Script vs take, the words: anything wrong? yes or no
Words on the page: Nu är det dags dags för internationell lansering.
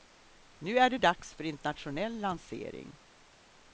yes